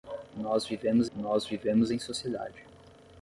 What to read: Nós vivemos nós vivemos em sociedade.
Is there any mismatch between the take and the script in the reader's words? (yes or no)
no